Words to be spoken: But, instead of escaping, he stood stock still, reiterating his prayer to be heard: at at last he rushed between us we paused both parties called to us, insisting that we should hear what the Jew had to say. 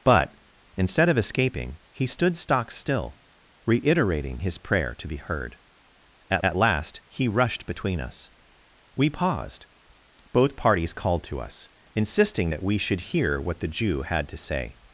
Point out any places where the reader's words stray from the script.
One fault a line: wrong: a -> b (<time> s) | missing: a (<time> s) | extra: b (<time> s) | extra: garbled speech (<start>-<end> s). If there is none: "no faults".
no faults